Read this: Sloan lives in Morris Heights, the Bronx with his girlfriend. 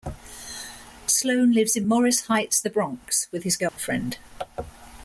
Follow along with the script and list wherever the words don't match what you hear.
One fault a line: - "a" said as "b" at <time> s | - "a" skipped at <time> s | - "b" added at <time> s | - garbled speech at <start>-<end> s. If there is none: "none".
none